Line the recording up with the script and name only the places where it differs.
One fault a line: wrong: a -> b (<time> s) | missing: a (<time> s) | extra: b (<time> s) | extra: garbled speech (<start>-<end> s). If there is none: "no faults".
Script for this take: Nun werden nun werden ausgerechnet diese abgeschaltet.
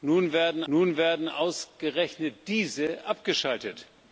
no faults